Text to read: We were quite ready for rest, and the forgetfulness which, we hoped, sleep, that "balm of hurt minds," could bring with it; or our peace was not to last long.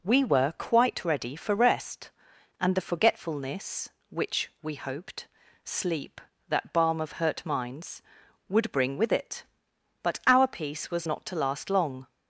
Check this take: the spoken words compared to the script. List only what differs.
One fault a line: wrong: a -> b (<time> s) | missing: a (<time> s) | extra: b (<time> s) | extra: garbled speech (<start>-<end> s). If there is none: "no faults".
wrong: could -> would (8.5 s)
wrong: or -> but (10.0 s)